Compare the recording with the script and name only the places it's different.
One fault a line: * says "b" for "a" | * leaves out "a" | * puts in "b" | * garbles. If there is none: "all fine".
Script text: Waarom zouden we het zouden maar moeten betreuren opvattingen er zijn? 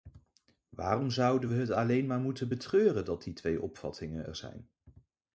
* says "alleen" for "zouden"
* puts in "dat die twee"